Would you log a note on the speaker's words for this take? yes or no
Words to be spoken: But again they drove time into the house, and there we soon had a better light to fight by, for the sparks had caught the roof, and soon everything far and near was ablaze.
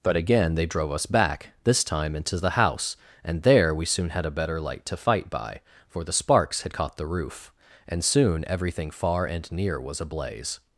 yes